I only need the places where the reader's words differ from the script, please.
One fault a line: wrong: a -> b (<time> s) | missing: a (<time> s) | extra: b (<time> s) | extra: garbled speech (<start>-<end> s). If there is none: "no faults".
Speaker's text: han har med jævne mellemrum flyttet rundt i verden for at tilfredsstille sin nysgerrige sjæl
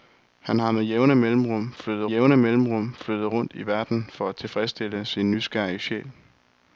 extra: jævne mellemrum flyttet (2.0 s)